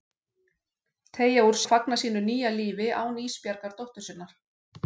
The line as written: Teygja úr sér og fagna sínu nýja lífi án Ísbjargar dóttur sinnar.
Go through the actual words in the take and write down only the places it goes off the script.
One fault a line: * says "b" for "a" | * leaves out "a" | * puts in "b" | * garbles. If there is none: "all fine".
* leaves out "sér"